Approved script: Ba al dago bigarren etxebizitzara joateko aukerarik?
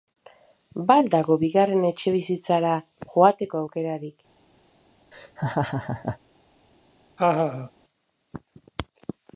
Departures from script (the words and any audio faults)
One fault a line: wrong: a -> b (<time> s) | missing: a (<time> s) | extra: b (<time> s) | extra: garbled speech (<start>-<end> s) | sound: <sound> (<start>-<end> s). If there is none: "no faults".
sound: laugh (5.1-6.2 s)
sound: laugh (7.2-7.7 s)